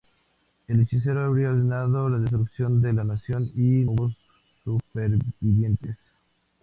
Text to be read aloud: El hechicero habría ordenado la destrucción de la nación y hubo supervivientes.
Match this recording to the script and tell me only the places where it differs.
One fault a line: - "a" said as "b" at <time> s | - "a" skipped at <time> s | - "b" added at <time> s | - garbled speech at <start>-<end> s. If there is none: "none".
none